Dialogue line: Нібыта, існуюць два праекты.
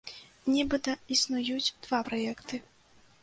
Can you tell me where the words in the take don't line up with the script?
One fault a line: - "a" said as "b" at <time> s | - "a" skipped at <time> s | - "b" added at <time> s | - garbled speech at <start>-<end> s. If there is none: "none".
none